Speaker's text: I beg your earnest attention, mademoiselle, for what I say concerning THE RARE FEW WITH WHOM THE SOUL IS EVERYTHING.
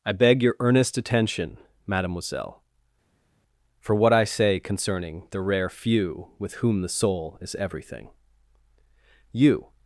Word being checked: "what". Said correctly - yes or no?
yes